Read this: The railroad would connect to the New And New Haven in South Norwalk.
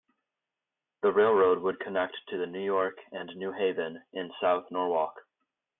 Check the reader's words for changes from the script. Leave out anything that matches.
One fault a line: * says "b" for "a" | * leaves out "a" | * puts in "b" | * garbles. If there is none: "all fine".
* puts in "York"